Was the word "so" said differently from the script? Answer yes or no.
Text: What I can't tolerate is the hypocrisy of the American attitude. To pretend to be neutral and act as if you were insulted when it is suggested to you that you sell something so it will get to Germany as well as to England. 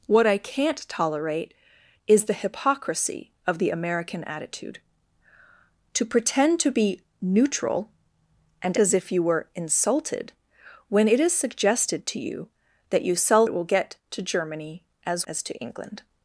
yes